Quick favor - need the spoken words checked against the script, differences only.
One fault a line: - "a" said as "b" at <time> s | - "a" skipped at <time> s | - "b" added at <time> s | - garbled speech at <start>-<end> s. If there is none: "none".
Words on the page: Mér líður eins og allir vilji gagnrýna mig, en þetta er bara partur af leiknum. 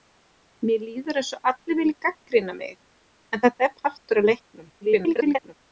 - "bara" skipped at 3.8 s
- garbled speech at 4.8-5.5 s